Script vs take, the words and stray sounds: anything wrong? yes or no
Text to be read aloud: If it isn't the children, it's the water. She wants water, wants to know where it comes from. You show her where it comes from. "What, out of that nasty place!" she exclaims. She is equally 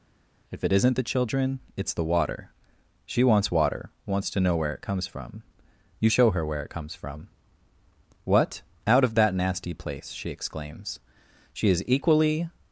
no